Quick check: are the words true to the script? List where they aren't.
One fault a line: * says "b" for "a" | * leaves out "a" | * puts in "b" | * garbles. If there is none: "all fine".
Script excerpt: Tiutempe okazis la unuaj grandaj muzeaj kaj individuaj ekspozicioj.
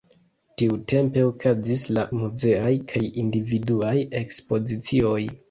* leaves out "unuaj grandaj"